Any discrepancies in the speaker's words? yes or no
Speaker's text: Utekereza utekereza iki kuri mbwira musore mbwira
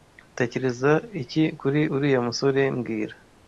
yes